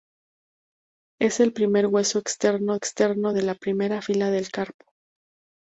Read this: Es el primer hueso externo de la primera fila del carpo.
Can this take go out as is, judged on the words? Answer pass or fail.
fail